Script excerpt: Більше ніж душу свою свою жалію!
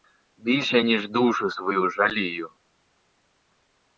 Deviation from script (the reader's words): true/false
true